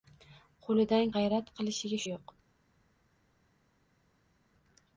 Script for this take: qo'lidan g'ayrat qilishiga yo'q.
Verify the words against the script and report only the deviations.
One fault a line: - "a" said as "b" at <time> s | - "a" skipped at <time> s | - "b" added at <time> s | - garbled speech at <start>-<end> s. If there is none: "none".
none